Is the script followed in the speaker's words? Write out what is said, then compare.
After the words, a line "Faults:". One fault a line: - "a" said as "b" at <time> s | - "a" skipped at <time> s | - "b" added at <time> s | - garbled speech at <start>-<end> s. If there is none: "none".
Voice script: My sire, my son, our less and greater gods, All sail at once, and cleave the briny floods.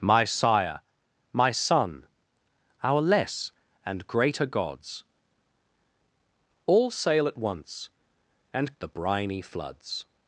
My sire, my son, our less and greater gods, All sail at once, and the briny floods.
Faults:
- "cleave" skipped at 8.7 s